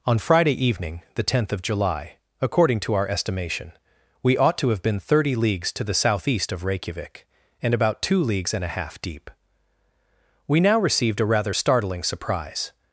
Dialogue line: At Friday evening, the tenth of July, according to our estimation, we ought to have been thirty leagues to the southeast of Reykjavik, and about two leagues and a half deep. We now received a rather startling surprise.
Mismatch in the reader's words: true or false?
true